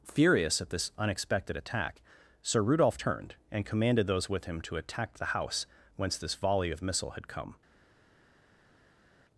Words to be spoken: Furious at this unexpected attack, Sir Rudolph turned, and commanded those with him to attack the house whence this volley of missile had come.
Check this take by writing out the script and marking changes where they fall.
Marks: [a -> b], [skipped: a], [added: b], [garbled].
Furious at this unexpected attack, Sir Rudolph turned, and commanded those with him to attack the house whence this volley of missile had come.